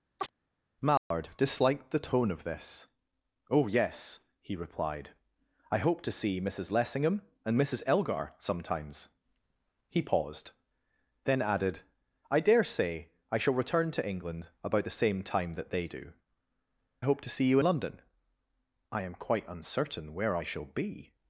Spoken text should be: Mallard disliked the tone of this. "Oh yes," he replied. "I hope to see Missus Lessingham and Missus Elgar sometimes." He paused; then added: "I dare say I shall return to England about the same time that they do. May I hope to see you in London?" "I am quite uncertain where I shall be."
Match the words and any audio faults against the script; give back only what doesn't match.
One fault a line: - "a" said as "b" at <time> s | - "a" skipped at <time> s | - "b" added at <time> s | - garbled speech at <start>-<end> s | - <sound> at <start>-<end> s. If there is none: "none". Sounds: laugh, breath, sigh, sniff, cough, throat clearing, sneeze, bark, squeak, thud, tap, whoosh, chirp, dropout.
- chirp at 0.2-0.3 s
- dropout at 1.0-1.1 s
- "May" skipped at 16.1 s
- "in" skipped at 17.6 s